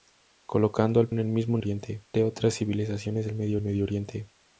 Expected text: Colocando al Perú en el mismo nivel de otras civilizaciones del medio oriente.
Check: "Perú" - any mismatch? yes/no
yes